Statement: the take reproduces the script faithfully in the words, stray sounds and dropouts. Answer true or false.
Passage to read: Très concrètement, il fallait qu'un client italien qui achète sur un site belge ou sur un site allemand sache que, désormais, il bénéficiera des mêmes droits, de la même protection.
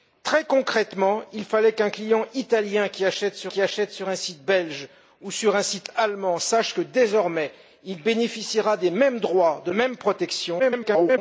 false